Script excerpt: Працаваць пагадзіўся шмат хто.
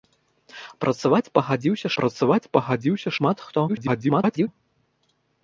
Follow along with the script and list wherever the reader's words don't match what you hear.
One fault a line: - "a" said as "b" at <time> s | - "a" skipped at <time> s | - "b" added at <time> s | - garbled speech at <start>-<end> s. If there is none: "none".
- "працаваць пагадзіўся" added at 2.0 s
- garbled speech at 3.7-4.5 s